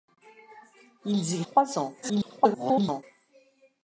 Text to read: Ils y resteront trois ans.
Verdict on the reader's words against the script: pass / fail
fail